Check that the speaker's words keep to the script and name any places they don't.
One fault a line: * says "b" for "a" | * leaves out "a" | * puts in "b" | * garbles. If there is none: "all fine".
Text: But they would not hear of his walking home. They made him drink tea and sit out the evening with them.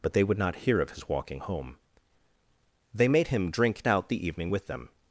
* leaves out "tea and sit"